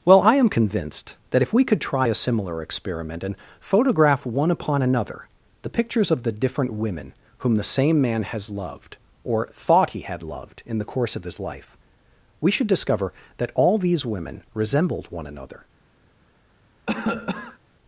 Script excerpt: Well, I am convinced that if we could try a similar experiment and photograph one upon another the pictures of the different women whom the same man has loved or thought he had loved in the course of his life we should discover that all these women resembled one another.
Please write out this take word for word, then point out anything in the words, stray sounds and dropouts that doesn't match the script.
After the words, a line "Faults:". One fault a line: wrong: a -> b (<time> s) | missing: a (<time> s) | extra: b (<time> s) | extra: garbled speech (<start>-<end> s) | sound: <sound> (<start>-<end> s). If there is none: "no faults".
Well, I am convinced that if we could try a similar experiment and photograph one upon another the pictures of the different women whom the same man has loved or thought he had loved in the course of his life we should discover that all these women resembled one another.
Faults:
sound: cough (16.9-17.6 s)